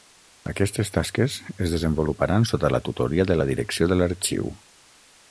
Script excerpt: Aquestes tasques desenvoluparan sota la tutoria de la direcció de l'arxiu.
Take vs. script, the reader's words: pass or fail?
fail